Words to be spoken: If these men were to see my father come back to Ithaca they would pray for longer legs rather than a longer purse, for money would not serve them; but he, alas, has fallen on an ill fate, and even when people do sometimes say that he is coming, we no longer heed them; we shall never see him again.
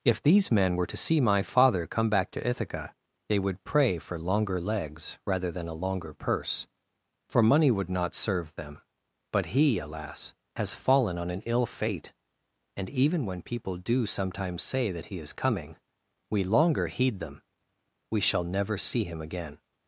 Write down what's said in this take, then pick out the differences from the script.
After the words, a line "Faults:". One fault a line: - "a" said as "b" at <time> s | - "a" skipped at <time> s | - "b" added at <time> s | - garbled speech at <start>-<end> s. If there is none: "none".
If these men were to see my father come back to Ithaca they would pray for longer legs rather than a longer purse, for money would not serve them; but he, alas, has fallen on an ill fate, and even when people do sometimes say that he is coming, we longer heed them; we shall never see him again.
Faults:
- "no" skipped at 16.4 s